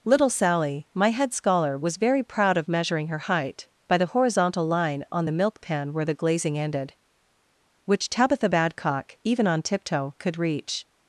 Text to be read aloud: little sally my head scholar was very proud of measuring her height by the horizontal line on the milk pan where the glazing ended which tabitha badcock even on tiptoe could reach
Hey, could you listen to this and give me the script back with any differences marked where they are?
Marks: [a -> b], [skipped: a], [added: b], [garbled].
little sally my head scholar was very proud of measuring her height by the horizontal line on the milk pan where the glazing ended which tabitha badcock even on tiptoe could reach